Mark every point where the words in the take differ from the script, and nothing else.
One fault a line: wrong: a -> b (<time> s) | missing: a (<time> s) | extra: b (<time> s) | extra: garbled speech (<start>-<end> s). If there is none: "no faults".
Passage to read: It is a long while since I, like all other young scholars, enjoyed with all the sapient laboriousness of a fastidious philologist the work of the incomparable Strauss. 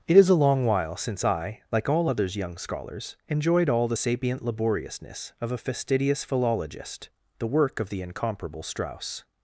wrong: other -> others (2.1 s)
missing: with (3.7 s)